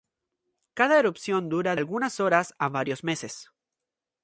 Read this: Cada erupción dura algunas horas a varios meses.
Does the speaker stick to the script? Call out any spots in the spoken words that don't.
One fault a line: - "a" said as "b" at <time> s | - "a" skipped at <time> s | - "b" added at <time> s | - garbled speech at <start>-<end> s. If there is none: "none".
none